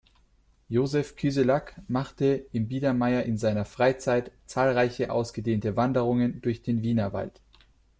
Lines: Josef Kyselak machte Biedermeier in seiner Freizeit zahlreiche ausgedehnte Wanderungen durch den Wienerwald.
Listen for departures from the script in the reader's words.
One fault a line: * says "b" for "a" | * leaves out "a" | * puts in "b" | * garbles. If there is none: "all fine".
* puts in "im"